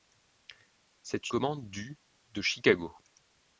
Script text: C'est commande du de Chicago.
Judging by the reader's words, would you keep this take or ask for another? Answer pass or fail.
pass